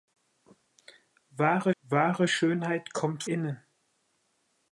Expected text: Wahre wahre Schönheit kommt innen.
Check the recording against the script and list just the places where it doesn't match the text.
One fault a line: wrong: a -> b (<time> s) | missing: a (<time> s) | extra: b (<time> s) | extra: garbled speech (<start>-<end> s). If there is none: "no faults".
no faults